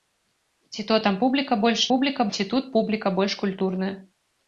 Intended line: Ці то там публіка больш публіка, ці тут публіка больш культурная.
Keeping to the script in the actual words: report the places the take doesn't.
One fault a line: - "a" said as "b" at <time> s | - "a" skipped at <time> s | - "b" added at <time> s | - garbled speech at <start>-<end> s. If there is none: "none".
none